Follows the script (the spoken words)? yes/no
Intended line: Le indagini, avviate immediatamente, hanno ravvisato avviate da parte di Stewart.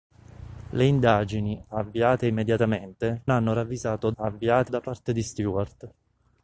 yes